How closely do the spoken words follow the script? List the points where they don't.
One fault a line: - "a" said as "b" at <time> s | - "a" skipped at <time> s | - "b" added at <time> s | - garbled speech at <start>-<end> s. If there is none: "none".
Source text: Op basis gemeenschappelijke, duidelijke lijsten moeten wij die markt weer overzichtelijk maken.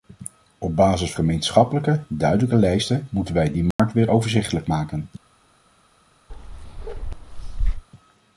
none